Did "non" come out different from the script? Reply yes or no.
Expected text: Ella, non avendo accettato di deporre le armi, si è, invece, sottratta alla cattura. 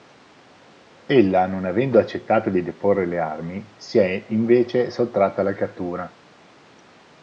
no